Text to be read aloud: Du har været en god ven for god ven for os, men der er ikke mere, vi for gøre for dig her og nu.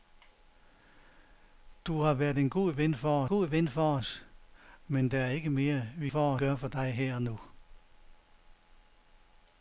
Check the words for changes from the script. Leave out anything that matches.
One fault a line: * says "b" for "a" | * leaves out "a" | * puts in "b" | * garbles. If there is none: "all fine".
all fine